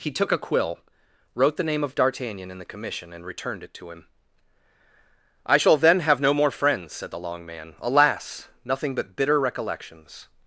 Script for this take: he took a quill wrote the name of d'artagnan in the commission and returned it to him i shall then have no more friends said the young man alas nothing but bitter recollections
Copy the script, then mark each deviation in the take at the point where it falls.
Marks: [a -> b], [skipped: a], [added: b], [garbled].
he took a quill wrote the name of d'artagnan in the commission and returned it to him i shall then have no more friends said the [young -> long] man alas nothing but bitter recollections